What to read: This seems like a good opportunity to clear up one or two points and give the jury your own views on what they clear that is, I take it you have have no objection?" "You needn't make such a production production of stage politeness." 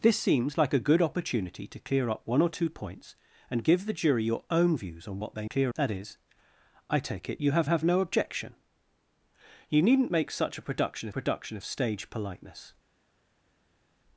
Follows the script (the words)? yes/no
yes